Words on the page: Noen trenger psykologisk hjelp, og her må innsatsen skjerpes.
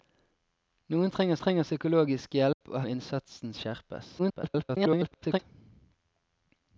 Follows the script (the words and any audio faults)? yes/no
no